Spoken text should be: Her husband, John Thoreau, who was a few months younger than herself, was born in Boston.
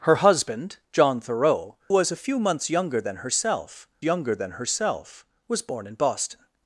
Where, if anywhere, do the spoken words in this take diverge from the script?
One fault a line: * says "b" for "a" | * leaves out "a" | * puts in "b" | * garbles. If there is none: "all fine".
* leaves out "who"
* puts in "younger than herself"